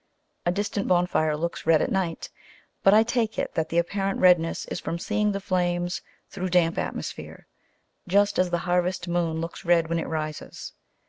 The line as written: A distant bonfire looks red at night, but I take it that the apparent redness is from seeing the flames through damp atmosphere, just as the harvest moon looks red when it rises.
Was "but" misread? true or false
false